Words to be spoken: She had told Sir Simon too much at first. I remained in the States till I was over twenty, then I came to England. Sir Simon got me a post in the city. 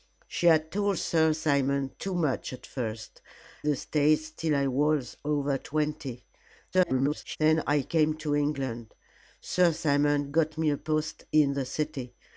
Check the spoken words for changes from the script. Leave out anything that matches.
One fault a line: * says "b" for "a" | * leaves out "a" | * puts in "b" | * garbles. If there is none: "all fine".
* leaves out "I remained in"
* garbles